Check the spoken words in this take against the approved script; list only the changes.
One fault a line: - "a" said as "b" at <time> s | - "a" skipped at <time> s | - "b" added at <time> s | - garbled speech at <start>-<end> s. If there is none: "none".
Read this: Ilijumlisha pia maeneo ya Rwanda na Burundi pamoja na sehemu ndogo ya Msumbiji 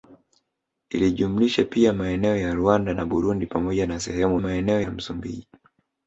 - "ndogo" said as "maeneo" at 4.4 s